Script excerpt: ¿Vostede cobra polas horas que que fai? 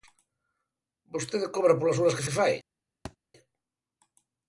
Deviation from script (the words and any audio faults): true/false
true